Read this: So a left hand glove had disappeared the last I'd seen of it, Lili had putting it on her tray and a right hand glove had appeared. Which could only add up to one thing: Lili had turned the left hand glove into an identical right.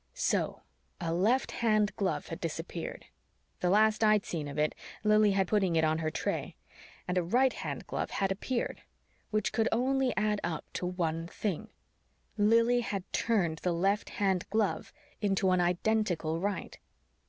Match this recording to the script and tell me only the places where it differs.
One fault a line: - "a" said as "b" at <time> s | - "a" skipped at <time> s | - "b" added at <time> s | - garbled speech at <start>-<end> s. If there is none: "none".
none